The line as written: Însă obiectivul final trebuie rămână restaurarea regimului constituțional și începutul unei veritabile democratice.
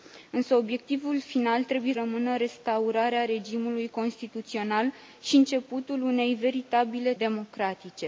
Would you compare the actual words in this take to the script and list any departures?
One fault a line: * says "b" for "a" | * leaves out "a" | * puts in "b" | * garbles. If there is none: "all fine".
all fine